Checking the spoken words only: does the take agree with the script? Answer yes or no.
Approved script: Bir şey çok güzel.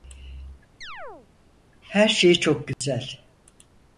no